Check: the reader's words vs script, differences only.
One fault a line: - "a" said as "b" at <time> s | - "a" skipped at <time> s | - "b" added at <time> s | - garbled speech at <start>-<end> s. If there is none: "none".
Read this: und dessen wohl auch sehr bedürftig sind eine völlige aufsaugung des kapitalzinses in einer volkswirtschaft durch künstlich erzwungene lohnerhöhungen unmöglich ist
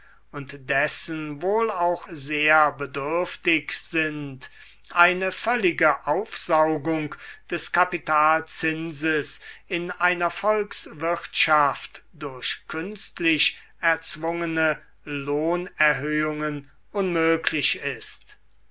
none